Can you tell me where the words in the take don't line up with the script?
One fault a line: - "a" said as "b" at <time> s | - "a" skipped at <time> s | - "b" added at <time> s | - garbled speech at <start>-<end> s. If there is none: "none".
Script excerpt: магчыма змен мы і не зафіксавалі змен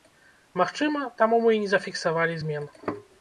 - "змен" said as "таму" at 1.2 s